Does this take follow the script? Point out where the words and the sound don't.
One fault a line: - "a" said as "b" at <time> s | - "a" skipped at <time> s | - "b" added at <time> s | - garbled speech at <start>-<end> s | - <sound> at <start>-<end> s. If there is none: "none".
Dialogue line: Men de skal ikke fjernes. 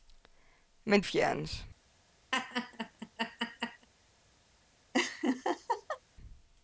- "de skal ikke" skipped at 1.0 s
- laugh at 2.3-3.9 s
- laugh at 4.9-6.0 s